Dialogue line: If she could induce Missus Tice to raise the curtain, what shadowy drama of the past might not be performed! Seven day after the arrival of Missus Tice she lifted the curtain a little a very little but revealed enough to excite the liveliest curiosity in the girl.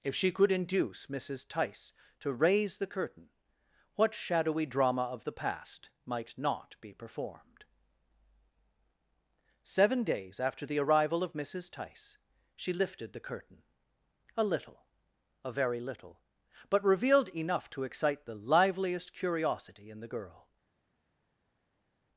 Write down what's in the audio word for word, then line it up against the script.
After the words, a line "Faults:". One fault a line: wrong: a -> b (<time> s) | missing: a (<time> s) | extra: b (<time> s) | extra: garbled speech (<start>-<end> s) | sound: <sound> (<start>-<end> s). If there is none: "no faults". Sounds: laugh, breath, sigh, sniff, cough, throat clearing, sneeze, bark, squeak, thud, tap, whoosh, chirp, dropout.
If she could induce Missus Tice to raise the curtain, what shadowy drama of the past might not be performed! Seven days after the arrival of Missus Tice she lifted the curtain a little a very little but revealed enough to excite the liveliest curiosity in the girl.
Faults:
wrong: day -> days (10.0 s)